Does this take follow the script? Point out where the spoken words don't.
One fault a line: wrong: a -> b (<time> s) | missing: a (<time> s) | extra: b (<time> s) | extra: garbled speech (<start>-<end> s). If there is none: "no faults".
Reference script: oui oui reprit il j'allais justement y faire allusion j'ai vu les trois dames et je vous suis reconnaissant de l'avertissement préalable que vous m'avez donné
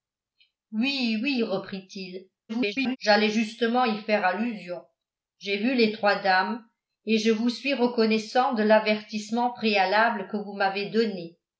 extra: garbled speech (2.5-3.0 s)